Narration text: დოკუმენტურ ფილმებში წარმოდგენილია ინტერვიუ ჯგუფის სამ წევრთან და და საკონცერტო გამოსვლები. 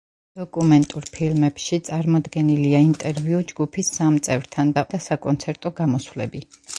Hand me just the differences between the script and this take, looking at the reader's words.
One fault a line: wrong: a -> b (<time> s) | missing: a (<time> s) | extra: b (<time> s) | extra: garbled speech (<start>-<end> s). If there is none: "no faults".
no faults